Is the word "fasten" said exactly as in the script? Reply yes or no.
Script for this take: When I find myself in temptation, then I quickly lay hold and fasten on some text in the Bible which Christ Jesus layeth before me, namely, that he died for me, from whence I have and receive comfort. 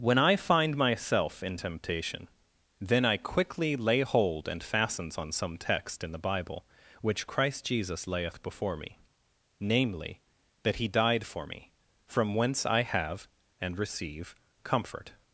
no